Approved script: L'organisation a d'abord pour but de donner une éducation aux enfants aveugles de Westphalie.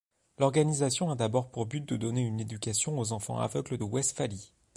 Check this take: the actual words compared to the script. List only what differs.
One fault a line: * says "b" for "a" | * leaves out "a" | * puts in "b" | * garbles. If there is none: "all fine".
* leaves out "de"